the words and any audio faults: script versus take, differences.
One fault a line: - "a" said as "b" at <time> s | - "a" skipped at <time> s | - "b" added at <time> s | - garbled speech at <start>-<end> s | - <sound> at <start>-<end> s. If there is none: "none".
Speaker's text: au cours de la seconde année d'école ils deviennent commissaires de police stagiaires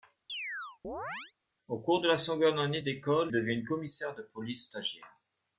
- chirp at 0.3-1.3 s
- "ils" skipped at 3.3 s